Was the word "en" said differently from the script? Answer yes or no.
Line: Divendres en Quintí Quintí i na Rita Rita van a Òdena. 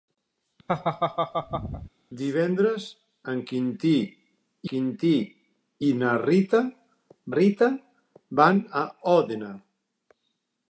no